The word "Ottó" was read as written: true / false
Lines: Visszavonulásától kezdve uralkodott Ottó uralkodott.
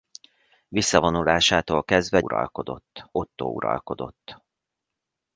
true